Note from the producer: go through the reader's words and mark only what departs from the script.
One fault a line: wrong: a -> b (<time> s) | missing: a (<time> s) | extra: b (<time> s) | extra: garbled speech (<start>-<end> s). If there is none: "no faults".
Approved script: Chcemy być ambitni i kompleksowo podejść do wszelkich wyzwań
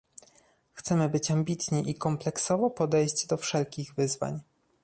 no faults